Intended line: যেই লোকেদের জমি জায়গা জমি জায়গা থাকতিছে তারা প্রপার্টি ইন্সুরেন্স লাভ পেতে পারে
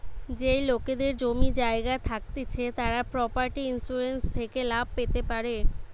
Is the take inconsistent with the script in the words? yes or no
yes